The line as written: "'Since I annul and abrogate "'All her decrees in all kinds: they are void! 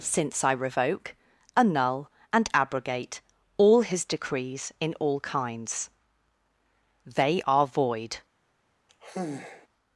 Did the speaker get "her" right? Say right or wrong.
wrong